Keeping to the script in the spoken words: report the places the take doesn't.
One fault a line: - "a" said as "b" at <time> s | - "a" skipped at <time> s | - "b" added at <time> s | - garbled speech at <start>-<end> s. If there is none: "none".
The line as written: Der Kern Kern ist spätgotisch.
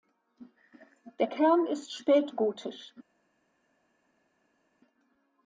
- "Kern" skipped at 1.7 s